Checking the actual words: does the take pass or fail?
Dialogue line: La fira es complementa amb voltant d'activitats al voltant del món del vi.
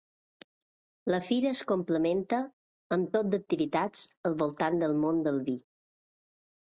fail